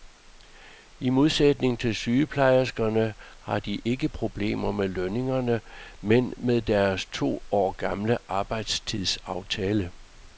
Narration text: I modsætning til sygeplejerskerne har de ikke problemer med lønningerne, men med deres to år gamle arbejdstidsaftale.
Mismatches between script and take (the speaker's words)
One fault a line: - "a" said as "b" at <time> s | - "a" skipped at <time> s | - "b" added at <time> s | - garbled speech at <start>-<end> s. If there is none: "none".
none